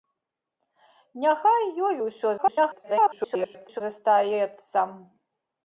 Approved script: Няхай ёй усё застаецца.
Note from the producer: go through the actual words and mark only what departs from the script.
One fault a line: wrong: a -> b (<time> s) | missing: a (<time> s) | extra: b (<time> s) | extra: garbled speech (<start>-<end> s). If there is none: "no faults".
extra: garbled speech (2.4-3.8 s)